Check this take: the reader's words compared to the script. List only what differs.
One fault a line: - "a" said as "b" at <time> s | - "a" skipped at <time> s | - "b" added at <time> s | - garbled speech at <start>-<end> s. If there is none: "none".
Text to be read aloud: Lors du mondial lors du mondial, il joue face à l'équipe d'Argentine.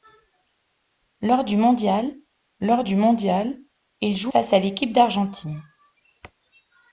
none